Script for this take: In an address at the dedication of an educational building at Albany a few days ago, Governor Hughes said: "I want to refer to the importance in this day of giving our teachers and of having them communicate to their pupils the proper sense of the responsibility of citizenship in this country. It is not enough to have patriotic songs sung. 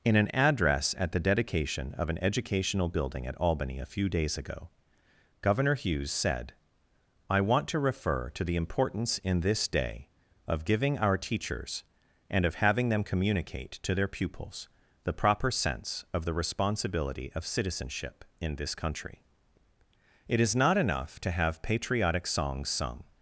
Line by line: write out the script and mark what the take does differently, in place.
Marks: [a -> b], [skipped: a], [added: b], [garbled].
In an address at the dedication of an educational building at Albany a few days ago, Governor Hughes said: "I want to refer to the importance in this day of giving our teachers and of having them communicate to their pupils the proper sense of the responsibility of citizenship in this country. It is not enough to have patriotic songs sung.